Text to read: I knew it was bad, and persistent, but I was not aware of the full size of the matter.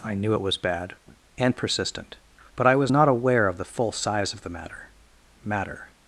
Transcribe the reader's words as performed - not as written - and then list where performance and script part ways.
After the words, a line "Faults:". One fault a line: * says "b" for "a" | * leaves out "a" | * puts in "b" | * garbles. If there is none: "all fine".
I knew it was bad, and persistent, but I was not aware of the full size of the matter matter.
Faults:
* puts in "matter"